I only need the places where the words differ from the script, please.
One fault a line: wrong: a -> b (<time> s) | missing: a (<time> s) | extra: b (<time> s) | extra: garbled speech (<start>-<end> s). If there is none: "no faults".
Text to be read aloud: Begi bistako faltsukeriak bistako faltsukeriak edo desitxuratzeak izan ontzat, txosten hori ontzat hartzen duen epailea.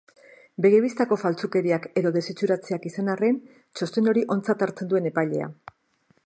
missing: bistako faltsukeriak (1.9 s)
wrong: ontzat -> arren (3.1 s)